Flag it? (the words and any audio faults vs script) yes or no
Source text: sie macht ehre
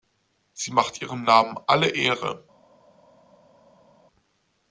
yes